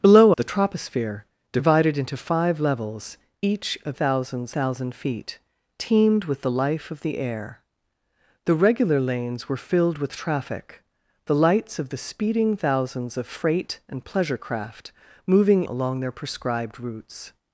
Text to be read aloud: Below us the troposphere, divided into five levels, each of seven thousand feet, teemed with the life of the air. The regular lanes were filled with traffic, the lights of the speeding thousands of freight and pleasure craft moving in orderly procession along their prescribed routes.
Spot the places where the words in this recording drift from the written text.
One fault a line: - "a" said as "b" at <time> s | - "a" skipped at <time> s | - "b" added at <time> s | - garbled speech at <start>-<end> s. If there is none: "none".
- "us" skipped at 0.3 s
- "seven" said as "thousands" at 3.9 s
- "in orderly procession" skipped at 15.6 s